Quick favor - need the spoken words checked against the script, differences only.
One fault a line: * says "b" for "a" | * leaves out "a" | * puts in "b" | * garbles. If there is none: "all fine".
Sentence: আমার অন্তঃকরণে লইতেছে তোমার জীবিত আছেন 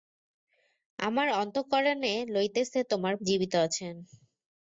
all fine